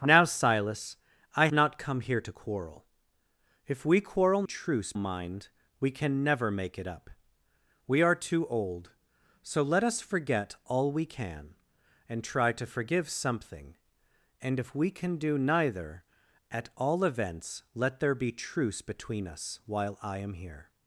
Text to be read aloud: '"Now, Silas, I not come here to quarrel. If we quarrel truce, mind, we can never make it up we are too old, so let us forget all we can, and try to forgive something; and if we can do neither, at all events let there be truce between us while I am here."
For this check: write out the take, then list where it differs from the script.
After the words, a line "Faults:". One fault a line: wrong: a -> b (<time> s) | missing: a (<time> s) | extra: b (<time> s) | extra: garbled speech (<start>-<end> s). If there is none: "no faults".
'"Now, Silas, I not come here to quarrel. If we quarrel truce, mind, we can never make it up we are too old, so let us forget all we can, and try to forgive something; and if we can do neither, at all events let there be truce between us while I am here."
Faults:
no faults